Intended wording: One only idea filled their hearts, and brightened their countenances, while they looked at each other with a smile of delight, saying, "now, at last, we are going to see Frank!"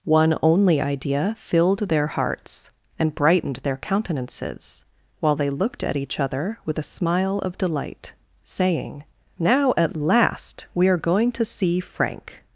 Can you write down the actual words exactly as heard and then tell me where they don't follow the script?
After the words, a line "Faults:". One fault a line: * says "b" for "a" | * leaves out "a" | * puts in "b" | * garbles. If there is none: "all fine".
One only idea filled their hearts, and brightened their countenances, while they looked at each other with a smile of delight, saying, "now, at last, we are going to see Frank!"
Faults:
all fine